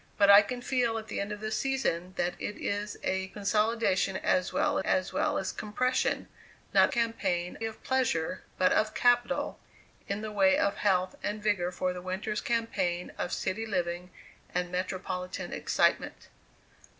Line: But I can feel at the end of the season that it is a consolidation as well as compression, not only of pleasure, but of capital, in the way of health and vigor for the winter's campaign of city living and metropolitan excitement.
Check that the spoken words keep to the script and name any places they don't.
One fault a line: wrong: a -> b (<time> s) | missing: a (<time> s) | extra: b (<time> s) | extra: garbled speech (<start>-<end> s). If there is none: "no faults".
extra: well as (5.1 s)
wrong: only -> campaign (6.9 s)